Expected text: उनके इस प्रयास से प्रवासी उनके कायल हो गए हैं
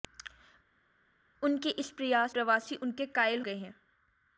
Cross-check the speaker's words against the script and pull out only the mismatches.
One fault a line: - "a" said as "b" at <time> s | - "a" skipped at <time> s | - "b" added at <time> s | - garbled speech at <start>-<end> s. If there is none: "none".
- "से" skipped at 2.3 s
- "हो" skipped at 3.4 s